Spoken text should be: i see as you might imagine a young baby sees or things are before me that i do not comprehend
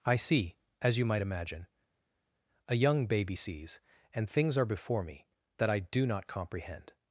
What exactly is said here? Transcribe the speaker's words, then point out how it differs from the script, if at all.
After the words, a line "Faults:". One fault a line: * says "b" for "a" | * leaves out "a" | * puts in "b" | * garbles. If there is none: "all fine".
i see as you might imagine a young baby sees and things are before me that i do not comprehend
Faults:
* says "and" for "or"